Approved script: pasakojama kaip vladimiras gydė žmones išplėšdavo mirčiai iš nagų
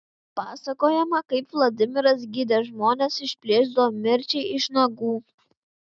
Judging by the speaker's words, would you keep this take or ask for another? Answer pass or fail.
pass